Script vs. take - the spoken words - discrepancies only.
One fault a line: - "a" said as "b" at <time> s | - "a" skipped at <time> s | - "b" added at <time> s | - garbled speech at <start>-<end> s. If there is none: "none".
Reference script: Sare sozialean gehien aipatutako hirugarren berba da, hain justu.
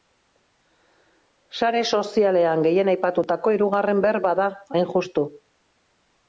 none